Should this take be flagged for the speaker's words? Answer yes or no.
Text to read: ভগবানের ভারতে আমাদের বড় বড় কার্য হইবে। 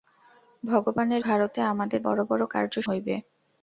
no